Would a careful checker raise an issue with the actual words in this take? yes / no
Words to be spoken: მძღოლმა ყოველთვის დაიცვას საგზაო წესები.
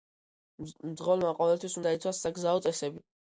no